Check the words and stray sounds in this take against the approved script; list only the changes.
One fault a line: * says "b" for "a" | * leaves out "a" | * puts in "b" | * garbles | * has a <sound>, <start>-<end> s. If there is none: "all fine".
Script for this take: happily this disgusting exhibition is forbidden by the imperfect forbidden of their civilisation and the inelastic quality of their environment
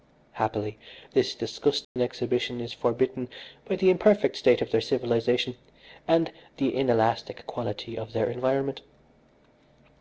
* has a dropout, 1.8-2.0 s
* says "state" for "forbidden"